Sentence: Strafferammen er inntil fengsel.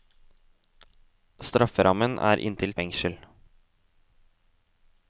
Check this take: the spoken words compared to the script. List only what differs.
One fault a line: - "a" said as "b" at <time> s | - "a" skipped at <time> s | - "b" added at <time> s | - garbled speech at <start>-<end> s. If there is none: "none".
none